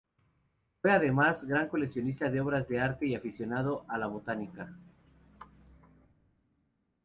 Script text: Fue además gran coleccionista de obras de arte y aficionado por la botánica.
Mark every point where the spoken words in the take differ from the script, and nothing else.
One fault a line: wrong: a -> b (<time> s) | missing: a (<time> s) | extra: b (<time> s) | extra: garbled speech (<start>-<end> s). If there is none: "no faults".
wrong: por -> a (3.9 s)